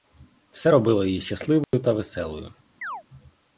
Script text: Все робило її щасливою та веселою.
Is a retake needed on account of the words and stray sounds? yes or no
yes